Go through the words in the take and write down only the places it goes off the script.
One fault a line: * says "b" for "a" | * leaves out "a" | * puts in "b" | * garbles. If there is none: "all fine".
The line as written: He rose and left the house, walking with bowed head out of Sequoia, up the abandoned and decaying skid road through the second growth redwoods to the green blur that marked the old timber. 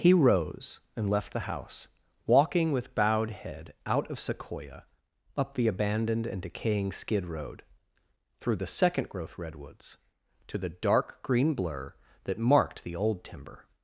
* puts in "dark"